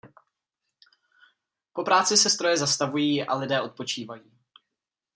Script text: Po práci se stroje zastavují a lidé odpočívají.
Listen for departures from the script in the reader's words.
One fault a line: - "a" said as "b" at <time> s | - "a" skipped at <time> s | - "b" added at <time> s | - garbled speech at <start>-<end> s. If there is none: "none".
none